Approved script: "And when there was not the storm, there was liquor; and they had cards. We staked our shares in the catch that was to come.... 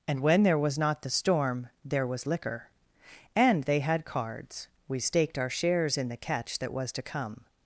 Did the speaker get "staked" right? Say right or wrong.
right